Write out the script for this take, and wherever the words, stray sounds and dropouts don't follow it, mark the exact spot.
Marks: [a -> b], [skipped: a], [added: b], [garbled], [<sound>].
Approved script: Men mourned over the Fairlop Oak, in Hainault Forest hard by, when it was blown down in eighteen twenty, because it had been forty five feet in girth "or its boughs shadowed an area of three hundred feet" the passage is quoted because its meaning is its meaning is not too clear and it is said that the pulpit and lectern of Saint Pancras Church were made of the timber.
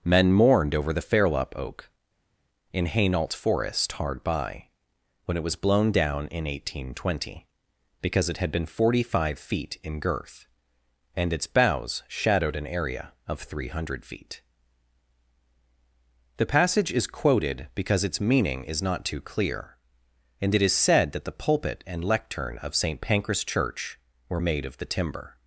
Men mourned over the Fairlop Oak, in Hainault Forest hard by, when it was blown down in eighteen twenty, because it had been forty five feet in girth ["or -> and] its boughs shadowed an area of three hundred feet" the passage is quoted because its meaning is [skipped: its meaning is] not too clear and it is said that the pulpit and lectern of Saint Pancras Church were made of the timber.